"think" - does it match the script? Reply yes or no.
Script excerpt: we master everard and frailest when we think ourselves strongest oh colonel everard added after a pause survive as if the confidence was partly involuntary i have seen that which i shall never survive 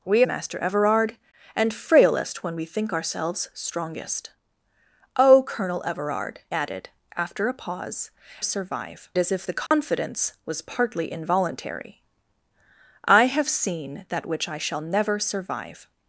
yes